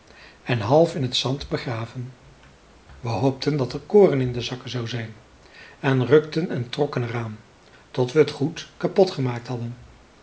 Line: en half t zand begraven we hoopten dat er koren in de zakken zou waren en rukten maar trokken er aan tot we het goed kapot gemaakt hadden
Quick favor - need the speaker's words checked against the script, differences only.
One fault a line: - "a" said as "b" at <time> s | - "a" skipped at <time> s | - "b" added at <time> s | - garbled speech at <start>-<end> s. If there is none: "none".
- "in" added at 0.9 s
- "waren" said as "zijn" at 4.9 s
- "maar" said as "en" at 6.5 s